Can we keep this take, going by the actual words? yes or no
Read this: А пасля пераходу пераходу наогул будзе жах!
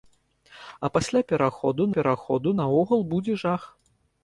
yes